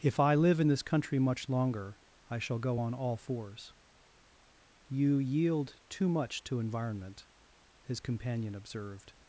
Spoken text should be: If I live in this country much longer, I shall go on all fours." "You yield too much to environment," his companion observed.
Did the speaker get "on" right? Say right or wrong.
right